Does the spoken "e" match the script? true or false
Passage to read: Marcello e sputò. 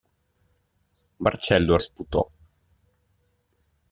true